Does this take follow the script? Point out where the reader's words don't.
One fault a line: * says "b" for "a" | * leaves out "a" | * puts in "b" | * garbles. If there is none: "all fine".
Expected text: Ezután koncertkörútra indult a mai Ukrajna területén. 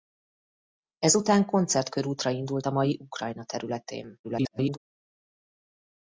* garbles